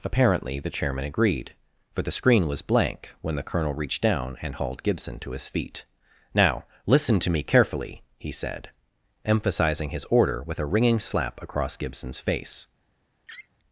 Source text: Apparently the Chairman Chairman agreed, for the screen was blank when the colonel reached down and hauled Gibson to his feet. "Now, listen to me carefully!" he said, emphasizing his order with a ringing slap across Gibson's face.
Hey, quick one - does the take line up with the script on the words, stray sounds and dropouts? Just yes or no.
no